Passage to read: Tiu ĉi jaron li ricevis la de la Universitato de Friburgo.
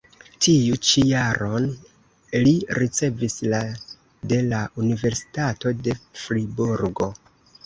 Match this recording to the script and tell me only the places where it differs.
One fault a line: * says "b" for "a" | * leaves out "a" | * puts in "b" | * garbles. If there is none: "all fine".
all fine